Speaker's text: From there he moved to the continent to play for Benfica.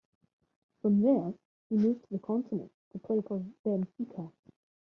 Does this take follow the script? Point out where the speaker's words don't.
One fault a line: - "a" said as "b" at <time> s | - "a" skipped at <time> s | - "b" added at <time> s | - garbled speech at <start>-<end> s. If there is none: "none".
none